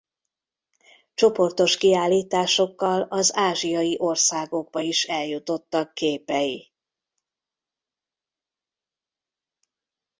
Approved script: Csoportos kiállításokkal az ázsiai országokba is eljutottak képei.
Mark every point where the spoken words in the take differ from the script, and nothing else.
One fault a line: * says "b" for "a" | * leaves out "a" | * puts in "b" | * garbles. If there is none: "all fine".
all fine